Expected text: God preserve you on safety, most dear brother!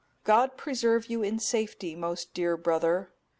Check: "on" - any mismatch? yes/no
yes